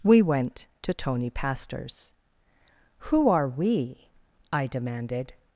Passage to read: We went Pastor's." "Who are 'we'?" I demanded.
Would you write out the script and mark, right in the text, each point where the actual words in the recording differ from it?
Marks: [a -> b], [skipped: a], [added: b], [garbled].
We went [added: to Tony] Pastor's." "Who are 'we'?" I demanded.